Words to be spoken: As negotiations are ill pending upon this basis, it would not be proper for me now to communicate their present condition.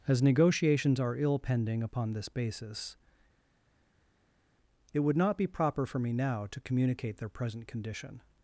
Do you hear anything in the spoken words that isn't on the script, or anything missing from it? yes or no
no